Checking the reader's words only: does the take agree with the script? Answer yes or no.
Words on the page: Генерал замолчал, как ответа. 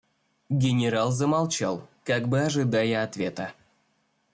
no